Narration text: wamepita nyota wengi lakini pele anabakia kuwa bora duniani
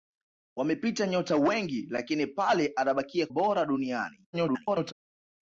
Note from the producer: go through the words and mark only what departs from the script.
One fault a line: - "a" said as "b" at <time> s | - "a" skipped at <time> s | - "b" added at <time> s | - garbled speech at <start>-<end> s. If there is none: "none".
- "kuwa" skipped at 3.3 s
- garbled speech at 4.3-4.9 s